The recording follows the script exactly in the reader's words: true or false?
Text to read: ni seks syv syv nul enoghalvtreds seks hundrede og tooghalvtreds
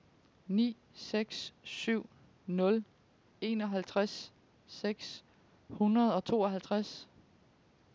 false